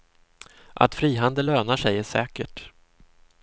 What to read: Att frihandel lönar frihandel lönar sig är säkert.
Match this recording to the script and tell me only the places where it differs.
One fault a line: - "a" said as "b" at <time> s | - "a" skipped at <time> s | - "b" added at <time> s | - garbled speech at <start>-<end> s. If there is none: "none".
- "frihandel lönar" skipped at 1.8 s